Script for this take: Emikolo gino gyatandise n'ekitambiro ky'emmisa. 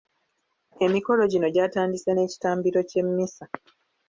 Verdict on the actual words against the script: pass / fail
pass